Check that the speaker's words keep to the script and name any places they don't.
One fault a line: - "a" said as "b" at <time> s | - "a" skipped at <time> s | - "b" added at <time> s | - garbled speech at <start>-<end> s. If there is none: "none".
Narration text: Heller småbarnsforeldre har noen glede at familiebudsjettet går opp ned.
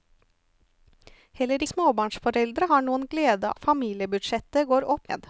none